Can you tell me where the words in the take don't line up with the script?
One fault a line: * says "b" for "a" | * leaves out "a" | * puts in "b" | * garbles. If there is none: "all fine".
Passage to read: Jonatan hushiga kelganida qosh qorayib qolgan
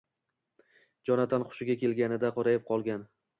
* leaves out "qosh"